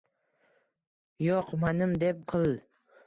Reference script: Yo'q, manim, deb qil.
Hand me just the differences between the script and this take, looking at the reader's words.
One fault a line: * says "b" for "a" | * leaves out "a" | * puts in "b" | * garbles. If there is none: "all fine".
all fine